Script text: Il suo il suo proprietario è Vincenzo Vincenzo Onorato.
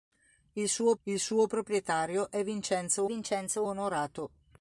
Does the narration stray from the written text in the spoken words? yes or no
no